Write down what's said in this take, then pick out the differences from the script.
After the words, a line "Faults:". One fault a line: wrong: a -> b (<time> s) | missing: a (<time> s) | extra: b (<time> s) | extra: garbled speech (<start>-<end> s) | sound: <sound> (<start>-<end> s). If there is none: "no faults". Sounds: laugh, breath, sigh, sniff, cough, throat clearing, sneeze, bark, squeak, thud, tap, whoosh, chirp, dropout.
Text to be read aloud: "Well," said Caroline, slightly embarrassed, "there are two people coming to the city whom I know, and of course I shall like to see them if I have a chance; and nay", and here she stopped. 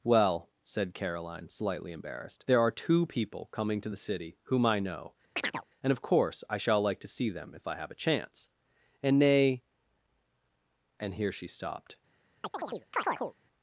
"Well," said Caroline, slightly embarrassed, "there are two people coming to the city whom I know, and of course I shall like to see them if I have a chance; and nay", and here she stopped.
Faults:
sound: chirp (5.4-5.6 s)
sound: chirp (12.4-13.3 s)